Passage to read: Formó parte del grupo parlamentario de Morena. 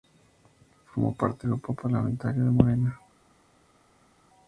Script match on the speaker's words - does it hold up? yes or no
no